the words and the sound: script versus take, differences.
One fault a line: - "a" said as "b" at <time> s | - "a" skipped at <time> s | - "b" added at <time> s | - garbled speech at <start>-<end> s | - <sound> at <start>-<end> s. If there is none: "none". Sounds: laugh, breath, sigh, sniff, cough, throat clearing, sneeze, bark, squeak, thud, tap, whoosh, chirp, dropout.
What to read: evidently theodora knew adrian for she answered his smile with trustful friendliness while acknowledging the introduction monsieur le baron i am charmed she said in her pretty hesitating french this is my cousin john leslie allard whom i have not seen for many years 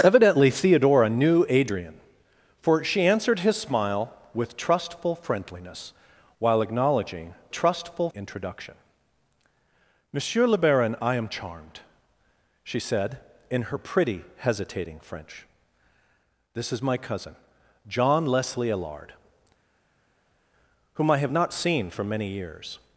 - "the" said as "trustful" at 7.5 s